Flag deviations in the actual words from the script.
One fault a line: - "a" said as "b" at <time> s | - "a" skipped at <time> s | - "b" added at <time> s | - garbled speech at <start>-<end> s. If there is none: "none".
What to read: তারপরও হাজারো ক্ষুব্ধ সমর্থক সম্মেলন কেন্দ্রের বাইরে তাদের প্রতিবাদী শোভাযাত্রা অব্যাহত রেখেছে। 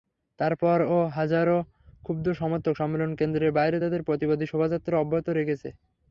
none